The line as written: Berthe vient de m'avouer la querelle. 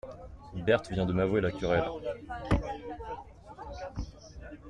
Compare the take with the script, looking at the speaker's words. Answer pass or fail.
pass